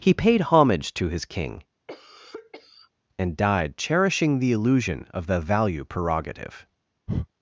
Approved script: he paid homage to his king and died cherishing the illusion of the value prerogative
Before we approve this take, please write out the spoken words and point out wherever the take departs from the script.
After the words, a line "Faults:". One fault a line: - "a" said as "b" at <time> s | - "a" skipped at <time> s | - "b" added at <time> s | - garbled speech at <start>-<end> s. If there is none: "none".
he paid homage to his king and died cherishing the illusion of the value prerogative
Faults:
none